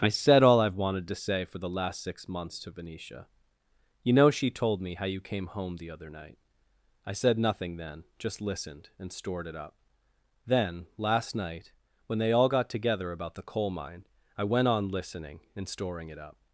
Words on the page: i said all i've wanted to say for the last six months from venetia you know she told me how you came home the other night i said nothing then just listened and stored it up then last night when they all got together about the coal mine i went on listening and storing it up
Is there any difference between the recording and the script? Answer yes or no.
yes